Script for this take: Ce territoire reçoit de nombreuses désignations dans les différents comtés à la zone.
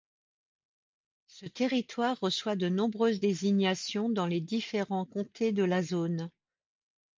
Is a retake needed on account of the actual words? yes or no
yes